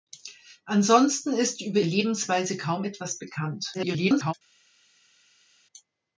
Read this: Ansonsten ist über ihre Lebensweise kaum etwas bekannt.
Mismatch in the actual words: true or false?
true